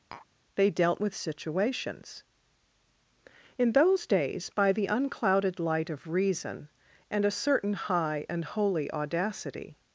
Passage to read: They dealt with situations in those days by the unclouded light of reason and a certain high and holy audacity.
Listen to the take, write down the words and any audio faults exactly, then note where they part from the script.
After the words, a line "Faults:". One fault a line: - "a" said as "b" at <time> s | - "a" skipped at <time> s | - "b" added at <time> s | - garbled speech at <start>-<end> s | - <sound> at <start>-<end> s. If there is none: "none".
They dealt with situations in those days by the unclouded light of reason and a certain high and holy audacity.
Faults:
- tap at 0.1-0.3 s